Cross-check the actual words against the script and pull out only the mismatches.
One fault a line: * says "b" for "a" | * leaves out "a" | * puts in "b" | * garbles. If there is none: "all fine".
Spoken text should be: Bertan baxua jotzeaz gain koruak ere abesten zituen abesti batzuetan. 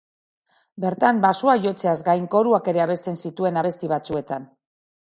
all fine